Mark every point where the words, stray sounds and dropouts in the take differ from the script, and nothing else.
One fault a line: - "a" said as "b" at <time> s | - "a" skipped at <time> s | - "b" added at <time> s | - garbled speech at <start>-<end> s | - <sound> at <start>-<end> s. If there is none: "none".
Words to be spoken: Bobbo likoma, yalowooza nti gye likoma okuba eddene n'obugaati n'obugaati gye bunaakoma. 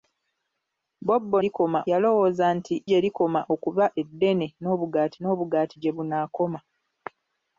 none